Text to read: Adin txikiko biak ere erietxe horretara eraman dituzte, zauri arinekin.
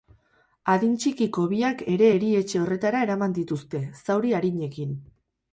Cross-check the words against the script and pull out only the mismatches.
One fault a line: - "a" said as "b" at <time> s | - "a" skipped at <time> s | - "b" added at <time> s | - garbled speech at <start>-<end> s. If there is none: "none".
none